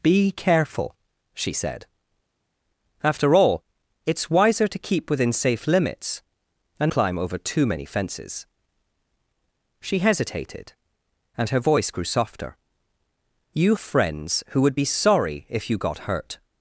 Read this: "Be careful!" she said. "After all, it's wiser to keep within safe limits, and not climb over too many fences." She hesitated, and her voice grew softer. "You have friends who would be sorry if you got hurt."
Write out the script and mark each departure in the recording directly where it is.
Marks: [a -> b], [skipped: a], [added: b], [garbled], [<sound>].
"Be careful!" she said. "After all, it's wiser to keep within safe limits, and [skipped: not] climb over too many fences." She hesitated, and her voice grew softer. "You [skipped: have] friends who would be sorry if you got hurt."